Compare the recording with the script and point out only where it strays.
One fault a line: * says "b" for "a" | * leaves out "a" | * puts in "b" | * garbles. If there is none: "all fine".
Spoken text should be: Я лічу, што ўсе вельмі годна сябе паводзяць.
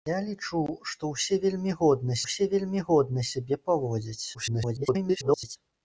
* puts in "ўсе вельмі годна"
* garbles